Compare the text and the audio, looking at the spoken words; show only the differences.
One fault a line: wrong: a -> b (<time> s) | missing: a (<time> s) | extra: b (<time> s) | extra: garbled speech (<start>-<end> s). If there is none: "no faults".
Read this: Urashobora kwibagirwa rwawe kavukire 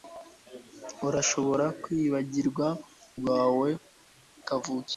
no faults